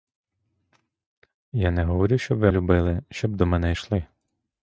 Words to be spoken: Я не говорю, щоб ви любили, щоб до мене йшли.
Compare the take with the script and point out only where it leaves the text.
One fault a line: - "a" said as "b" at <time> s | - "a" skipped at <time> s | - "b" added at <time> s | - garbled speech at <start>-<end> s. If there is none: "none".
none